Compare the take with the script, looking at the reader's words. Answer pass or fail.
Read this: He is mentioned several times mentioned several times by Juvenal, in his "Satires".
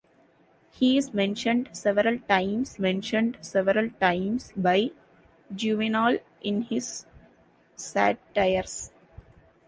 pass